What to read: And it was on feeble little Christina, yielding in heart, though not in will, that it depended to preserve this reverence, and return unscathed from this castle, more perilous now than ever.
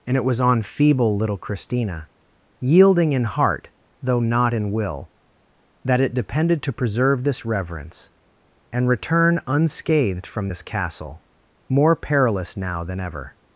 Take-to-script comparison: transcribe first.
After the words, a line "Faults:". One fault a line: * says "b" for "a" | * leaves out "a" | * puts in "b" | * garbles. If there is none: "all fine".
And it was on feeble little Christina, yielding in heart, though not in will, that it depended to preserve this reverence, and return unscathed from this castle, more perilous now than ever.
Faults:
all fine